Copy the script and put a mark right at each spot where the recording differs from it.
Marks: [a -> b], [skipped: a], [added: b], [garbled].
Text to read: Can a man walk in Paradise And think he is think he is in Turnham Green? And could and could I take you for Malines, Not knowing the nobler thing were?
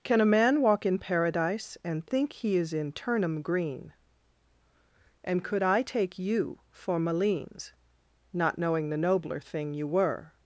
Can a man walk in Paradise And think he is [skipped: think he is] in Turnham Green? And could [skipped: and could] I take you for Malines, Not knowing the nobler thing [added: you] were?